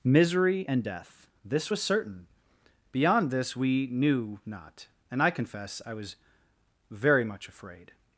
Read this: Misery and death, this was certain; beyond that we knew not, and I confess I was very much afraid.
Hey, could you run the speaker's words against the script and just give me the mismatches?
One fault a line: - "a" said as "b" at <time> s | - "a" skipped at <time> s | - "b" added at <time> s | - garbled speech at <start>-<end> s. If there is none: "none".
- "that" said as "this" at 3.3 s